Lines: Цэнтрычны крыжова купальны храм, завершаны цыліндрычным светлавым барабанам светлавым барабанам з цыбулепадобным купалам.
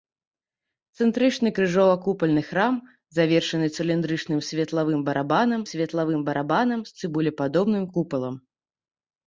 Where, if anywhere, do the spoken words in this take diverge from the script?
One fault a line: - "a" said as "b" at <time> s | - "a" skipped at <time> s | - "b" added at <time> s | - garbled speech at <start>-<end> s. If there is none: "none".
none